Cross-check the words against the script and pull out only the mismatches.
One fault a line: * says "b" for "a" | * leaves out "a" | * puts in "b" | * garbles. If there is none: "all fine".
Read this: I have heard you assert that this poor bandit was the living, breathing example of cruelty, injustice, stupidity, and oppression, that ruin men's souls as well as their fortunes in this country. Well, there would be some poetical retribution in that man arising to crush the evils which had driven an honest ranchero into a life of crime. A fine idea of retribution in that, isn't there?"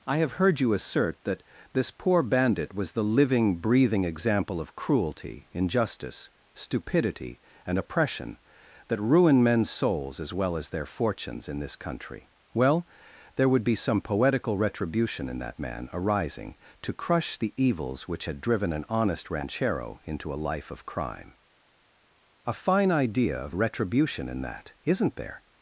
all fine